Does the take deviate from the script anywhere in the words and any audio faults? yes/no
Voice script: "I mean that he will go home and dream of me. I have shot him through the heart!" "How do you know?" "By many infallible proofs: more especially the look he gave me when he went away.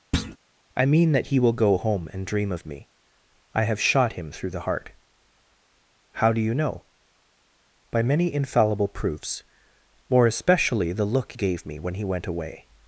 yes